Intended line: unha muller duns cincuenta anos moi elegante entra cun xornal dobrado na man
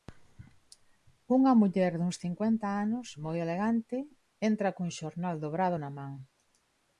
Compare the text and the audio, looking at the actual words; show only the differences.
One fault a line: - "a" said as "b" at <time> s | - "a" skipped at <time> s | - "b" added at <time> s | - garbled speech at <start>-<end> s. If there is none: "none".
none